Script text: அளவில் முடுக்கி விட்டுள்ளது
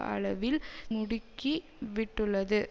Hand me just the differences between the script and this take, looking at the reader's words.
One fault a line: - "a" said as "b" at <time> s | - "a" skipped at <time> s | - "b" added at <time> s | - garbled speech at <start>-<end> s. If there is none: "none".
none